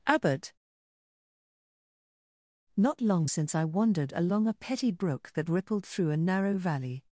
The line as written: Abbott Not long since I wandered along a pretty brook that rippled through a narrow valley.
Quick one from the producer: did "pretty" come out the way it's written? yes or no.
no